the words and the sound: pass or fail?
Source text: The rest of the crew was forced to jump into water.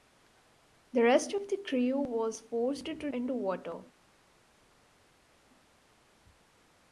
fail